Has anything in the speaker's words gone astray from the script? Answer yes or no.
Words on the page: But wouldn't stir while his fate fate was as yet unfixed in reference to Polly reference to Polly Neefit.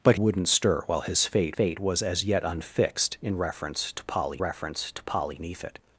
no